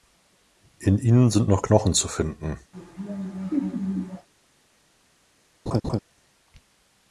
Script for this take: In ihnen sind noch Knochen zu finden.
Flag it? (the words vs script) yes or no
no